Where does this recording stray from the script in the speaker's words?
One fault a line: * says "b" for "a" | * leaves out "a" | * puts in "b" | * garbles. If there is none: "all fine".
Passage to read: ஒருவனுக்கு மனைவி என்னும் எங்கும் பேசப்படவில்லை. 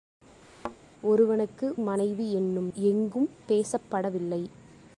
all fine